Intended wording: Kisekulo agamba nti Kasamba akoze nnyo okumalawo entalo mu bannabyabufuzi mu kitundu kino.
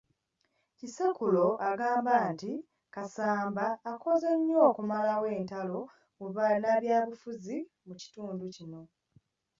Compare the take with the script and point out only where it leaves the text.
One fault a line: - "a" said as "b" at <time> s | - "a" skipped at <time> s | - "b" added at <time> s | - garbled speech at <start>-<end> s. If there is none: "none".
none